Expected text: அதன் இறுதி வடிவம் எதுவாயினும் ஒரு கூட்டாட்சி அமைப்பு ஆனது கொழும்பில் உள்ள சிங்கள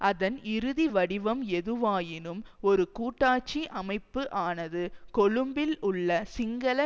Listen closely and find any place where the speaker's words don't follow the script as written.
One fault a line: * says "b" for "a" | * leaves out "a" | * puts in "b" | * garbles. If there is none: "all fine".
all fine